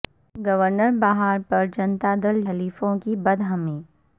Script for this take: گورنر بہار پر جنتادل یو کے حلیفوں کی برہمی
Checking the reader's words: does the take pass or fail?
fail